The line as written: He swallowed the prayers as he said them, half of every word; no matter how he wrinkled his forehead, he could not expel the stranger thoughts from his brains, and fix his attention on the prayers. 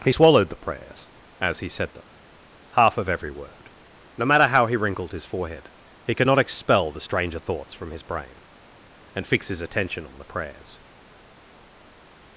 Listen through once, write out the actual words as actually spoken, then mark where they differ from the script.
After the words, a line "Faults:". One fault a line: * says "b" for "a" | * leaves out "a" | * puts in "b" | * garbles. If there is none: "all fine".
He swallowed the prayers as he said them, half of every word; no matter how he wrinkled his forehead, he could not expel the stranger thoughts from his brain, and fix his attention on the prayers.
Faults:
* says "brain" for "brains"